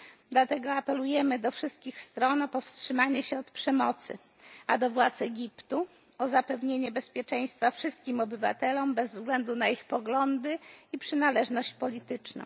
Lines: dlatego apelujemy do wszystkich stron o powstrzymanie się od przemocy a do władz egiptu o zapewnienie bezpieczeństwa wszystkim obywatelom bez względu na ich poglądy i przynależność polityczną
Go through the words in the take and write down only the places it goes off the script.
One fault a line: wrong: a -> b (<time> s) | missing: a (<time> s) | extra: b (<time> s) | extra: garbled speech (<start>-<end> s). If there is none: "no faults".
no faults